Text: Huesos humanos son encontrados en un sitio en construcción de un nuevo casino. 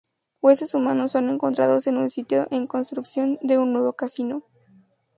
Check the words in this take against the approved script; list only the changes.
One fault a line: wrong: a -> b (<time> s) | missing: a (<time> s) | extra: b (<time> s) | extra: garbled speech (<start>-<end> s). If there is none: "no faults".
no faults